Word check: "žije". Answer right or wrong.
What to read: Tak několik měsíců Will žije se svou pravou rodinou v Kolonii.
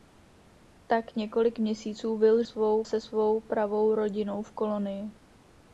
wrong